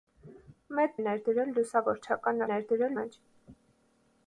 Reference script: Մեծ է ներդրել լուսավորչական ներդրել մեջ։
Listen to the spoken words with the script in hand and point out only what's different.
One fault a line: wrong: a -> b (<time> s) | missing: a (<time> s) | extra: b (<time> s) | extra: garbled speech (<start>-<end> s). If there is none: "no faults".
no faults